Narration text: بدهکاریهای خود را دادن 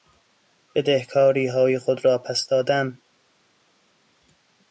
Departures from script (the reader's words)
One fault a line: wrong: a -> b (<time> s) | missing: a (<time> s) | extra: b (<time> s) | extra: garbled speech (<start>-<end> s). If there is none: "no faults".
extra: پس (2.2 s)